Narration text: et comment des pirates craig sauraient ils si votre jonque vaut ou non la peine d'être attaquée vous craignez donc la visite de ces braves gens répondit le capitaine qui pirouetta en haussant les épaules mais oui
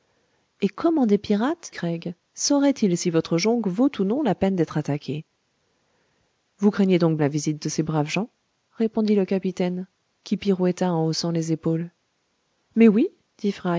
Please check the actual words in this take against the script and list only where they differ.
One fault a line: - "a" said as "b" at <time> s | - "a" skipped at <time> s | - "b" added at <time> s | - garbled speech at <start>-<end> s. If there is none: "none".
none